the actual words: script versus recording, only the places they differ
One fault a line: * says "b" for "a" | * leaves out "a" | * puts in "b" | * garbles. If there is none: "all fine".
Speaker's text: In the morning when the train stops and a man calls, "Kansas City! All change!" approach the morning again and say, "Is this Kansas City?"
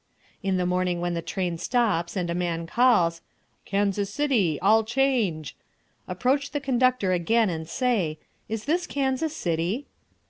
* says "conductor" for "morning"